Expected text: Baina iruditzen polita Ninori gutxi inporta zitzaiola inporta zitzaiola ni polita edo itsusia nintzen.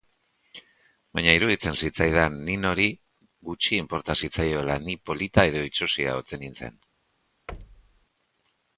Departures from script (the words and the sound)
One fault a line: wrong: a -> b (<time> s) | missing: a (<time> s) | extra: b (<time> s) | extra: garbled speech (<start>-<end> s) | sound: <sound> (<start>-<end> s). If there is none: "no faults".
wrong: polita -> zitzaidan (1.8 s)
missing: inporta zitzaiola (4.8 s)
extra: ote (6.2 s)
sound: thud (7.5-8.1 s)